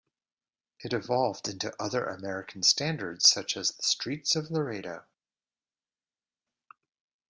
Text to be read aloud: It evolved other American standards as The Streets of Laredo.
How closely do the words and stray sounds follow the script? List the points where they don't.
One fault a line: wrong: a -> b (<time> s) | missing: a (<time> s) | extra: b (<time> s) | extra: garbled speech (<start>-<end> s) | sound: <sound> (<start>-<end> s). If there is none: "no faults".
extra: into (1.5 s)
extra: such (3.3 s)